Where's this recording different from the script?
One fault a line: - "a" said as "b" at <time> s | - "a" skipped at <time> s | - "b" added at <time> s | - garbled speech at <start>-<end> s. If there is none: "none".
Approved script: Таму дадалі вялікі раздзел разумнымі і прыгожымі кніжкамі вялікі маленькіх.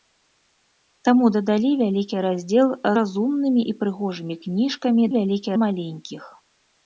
none